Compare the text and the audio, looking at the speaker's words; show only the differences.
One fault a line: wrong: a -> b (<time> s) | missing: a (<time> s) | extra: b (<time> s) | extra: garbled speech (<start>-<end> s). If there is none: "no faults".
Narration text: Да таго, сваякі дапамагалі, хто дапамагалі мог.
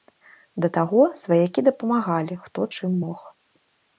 wrong: дапамагалі -> чым (2.7 s)